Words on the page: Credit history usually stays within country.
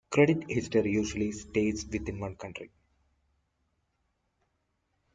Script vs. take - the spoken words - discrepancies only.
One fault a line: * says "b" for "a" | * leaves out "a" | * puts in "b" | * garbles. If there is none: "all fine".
* puts in "one"